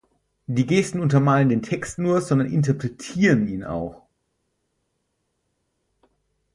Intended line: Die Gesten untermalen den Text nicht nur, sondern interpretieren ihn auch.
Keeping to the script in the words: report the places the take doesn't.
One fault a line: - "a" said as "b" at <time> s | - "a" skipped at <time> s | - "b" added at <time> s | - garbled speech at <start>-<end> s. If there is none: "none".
- "nicht" skipped at 2.0 s